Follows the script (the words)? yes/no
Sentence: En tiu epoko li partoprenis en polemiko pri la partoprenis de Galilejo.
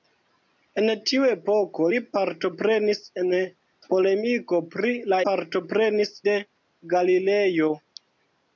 yes